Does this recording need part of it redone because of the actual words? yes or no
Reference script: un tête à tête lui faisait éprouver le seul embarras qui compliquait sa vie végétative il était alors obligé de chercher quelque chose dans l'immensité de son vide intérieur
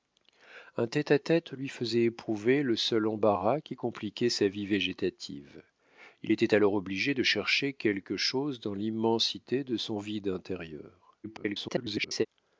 yes